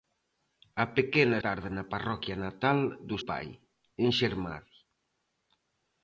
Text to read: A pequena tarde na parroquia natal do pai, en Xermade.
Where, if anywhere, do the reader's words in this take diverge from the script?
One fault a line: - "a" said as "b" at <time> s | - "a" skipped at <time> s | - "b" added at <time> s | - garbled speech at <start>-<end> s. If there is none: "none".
none